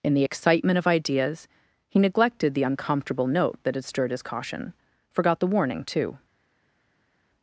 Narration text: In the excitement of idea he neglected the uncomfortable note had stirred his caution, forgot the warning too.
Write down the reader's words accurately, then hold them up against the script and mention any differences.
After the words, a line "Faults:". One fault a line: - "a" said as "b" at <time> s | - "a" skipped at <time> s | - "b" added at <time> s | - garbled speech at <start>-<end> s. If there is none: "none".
In the excitement of ideas he neglected the uncomfortable note that had stirred his caution, forgot the warning too.
Faults:
- "idea" said as "ideas" at 0.9 s
- "that" added at 3.6 s